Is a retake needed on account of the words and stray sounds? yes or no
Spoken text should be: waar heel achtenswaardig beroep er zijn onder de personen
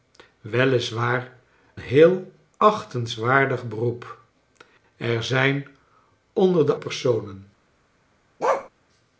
yes